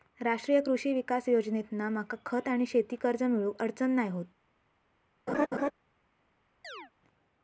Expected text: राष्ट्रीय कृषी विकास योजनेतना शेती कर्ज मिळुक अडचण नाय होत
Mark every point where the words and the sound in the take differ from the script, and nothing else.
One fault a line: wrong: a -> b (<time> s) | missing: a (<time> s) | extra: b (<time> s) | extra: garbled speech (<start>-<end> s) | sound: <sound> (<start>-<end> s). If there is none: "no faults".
extra: मका खत आणि (1.9 s)
sound: laugh (5.3-5.7 s)
sound: chirp (6.6-6.9 s)